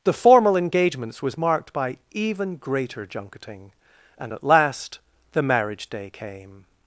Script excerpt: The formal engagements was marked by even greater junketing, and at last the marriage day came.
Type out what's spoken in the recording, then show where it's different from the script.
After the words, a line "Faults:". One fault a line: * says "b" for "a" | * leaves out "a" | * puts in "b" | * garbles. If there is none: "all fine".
The formal engagements was marked by even greater junketing, and at last the marriage day came.
Faults:
all fine